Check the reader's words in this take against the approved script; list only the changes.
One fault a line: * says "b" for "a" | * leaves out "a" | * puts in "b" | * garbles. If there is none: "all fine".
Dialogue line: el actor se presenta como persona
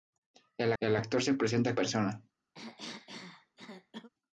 * puts in "el"
* leaves out "como"